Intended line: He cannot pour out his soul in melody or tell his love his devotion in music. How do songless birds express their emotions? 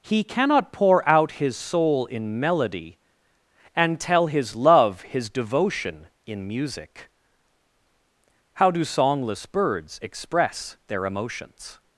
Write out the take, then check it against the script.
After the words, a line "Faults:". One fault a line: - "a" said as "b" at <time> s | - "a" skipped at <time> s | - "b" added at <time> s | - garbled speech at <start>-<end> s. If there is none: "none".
He cannot pour out his soul in melody and tell his love his devotion in music. How do songless birds express their emotions?
Faults:
- "or" said as "and" at 3.8 s